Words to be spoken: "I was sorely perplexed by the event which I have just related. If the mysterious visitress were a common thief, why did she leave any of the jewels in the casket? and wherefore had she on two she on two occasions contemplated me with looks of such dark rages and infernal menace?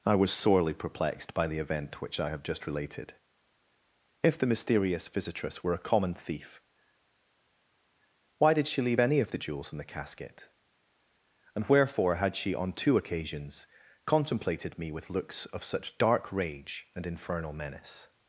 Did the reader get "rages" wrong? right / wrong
wrong